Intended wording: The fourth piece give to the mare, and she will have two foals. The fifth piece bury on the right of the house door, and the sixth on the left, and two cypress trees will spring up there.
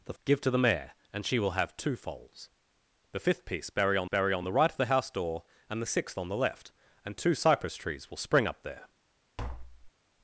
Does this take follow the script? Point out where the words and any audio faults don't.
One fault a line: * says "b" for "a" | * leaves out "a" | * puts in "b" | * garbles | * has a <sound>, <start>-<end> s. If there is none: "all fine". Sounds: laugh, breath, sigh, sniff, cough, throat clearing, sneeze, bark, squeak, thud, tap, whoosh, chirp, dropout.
* leaves out "fourth piece"
* puts in "bury on"
* has a tap, 9.4-9.9 s